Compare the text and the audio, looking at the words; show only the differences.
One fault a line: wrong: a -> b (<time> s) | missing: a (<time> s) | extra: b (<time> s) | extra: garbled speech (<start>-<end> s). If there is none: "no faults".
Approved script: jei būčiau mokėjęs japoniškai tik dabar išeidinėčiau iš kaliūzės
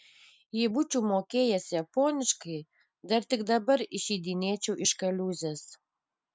extra: dar (3.1 s)